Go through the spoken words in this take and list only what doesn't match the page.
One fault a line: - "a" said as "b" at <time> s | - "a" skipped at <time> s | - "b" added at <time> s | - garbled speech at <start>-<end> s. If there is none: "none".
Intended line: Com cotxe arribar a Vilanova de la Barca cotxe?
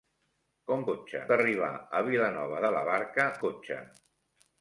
none